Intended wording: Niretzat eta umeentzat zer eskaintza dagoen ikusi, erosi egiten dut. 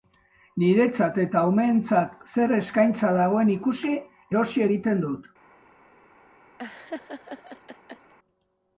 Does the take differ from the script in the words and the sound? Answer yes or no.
yes